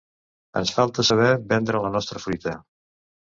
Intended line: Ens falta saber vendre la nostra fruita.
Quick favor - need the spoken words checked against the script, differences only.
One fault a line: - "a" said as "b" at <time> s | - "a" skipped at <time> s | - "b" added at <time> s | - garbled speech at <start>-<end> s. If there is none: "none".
none